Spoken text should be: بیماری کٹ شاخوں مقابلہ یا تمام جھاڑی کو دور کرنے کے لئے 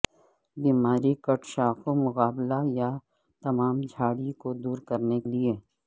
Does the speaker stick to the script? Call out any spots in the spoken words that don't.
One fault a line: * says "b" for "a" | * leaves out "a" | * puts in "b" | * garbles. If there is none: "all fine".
* leaves out "کے"